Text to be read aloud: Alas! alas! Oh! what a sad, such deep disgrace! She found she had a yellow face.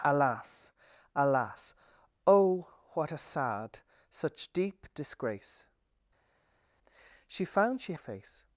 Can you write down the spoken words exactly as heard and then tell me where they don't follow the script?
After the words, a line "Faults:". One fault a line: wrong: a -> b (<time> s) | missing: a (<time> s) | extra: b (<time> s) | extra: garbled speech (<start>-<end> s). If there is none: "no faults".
Alas! alas! Oh! what a sad, such deep disgrace! She found she face.
Faults:
missing: had a yellow (7.9 s)